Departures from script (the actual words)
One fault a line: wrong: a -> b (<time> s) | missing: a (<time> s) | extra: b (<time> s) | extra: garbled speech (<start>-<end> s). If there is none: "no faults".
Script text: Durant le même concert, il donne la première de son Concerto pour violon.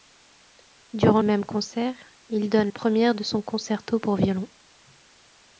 missing: le (1.2 s)
missing: la (2.7 s)